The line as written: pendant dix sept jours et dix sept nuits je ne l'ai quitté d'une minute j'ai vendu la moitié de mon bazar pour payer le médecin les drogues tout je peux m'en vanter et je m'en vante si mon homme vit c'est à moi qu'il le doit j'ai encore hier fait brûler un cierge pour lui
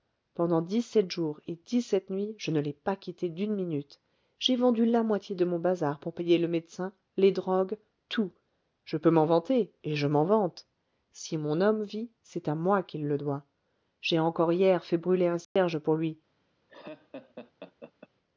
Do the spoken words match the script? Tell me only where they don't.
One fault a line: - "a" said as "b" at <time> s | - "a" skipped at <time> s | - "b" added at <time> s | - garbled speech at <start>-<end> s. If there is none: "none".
- "pas" added at 2.7 s